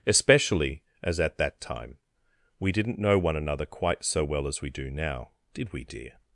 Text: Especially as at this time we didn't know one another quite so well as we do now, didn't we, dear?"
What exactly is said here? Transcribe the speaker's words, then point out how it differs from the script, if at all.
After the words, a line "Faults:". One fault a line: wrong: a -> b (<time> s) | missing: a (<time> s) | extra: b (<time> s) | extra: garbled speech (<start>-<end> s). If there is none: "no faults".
Especially as at that time we didn't know one another quite so well as we do now, did we, dear?"
Faults:
wrong: this -> that (1.4 s)
wrong: didn't -> did (5.5 s)